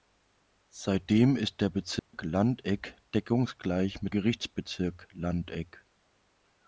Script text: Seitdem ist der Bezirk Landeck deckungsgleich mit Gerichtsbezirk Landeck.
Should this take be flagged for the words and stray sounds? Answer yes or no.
yes